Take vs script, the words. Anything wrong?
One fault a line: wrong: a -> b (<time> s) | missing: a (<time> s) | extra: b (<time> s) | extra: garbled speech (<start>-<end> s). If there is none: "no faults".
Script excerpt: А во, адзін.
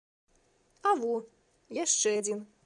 extra: яшчэ (1.8 s)